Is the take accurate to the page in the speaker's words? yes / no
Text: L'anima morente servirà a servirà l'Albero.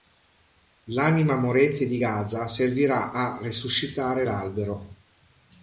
no